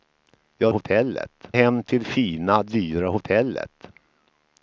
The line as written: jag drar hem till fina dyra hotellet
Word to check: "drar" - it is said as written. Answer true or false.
false